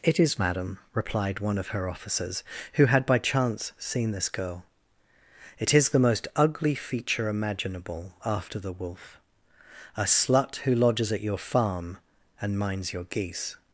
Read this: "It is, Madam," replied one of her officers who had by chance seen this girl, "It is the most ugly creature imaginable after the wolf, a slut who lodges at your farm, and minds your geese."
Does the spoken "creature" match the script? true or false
false